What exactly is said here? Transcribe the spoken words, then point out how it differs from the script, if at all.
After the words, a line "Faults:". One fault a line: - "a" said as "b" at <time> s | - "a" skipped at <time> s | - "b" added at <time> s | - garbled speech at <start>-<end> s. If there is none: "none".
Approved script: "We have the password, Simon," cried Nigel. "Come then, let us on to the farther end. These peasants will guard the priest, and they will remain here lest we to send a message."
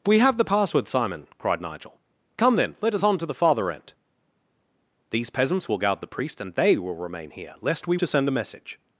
"We have the password, Simon," cried Nigel. "Come then, let us on to the farther end. These peasants will guard the priest, and they will remain here lest we to send a message."
Faults:
none